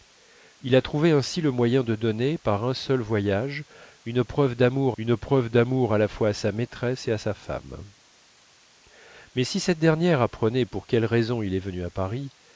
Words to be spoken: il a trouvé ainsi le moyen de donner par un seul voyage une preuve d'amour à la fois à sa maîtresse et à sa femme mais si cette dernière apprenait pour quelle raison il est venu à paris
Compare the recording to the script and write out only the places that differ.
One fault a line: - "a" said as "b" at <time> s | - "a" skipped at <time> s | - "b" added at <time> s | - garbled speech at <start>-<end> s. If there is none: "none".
- "une preuve d'amour" added at 5.0 s